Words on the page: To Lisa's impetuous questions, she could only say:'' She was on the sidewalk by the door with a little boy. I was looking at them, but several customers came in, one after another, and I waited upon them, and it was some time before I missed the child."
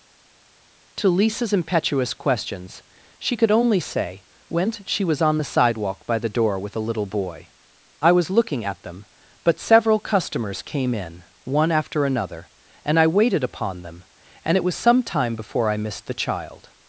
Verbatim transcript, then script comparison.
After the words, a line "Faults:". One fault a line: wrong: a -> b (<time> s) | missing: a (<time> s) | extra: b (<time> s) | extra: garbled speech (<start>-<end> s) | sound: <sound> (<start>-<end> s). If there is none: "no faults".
To Lisa's impetuous questions, she could only say:'' when She was on the sidewalk by the door with a little boy. I was looking at them, but several customers came in, one after another, and I waited upon them, and it was some time before I missed the child."
Faults:
extra: when (4.5 s)